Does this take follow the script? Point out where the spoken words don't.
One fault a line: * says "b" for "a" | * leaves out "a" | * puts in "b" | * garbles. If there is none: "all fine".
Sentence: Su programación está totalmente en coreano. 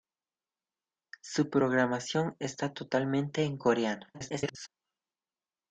* garbles